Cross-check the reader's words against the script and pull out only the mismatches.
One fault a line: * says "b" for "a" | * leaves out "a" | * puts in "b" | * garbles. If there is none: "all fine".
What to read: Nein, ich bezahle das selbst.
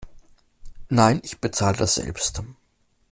all fine